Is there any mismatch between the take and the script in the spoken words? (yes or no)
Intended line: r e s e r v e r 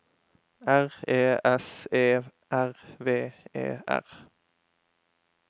no